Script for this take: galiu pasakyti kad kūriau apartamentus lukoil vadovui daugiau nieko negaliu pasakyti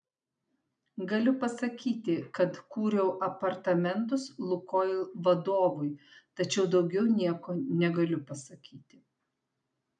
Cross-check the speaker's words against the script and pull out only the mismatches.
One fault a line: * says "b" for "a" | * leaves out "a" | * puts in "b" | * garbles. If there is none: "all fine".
* puts in "tačiau"